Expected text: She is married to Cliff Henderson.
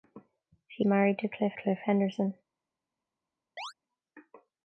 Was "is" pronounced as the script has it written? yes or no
no